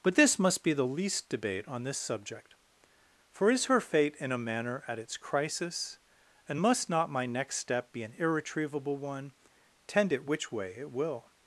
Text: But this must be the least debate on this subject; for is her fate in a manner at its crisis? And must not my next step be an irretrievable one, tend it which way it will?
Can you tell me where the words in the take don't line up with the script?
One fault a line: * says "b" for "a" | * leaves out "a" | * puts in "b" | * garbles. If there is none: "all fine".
all fine